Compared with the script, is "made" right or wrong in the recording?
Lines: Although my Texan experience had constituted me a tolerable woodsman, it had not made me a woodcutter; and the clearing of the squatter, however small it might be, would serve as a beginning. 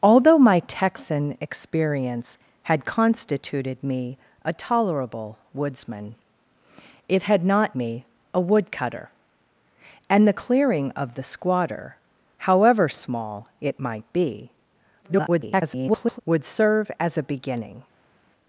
wrong